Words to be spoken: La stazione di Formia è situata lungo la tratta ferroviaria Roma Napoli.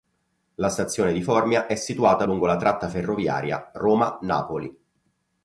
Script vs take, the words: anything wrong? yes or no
no